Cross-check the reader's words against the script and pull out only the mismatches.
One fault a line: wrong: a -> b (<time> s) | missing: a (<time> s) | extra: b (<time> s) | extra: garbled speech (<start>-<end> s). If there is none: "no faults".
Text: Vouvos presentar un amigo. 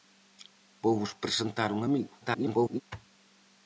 extra: garbled speech (2.2-2.8 s)